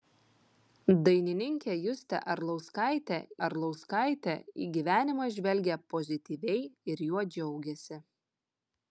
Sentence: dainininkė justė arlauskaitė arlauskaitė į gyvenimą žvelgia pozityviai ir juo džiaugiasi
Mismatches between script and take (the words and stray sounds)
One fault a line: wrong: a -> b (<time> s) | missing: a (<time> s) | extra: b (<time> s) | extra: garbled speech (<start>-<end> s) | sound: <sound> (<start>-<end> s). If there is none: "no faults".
no faults